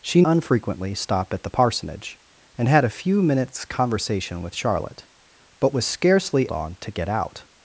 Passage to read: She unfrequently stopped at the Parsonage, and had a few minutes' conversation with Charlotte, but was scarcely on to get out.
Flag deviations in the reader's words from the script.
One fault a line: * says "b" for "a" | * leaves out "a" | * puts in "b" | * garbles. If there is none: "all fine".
all fine